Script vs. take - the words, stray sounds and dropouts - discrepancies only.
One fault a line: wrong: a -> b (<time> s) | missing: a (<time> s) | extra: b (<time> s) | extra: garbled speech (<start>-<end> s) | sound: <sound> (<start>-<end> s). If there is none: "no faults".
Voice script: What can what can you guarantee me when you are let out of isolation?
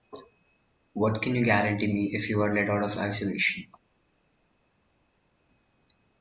missing: what can (1.4 s)
wrong: when -> if (2.1 s)